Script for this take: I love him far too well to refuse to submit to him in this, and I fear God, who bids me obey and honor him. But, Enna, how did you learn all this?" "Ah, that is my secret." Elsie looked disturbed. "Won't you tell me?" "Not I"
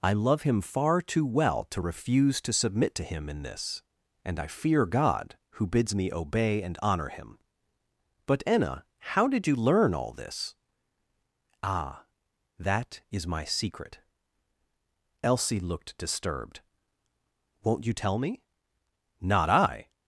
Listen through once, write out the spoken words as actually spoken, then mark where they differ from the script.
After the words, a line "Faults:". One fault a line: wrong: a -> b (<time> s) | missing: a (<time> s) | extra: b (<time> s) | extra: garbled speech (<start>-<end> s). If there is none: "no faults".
I love him far too well to refuse to submit to him in this, and I fear God, who bids me obey and honor him. But, Enna, how did you learn all this?" "Ah, that is my secret." Elsie looked disturbed. "Won't you tell me?" "Not I"
Faults:
no faults